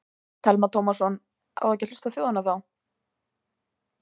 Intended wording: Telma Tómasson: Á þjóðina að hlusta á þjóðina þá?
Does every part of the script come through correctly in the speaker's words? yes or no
no